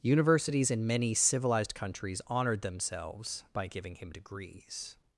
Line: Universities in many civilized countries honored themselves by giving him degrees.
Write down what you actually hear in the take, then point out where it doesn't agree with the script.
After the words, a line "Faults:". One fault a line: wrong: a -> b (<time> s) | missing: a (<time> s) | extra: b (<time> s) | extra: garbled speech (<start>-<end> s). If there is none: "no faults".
Universities in many civilized countries honored themselves by giving him degrees.
Faults:
no faults